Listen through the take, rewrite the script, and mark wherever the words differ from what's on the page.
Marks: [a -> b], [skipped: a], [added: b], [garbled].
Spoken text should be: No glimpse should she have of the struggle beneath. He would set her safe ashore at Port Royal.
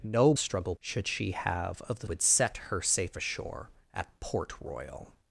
No [glimpse -> struggle] should she have of the [skipped: struggle beneath. He] would set her safe ashore at Port Royal.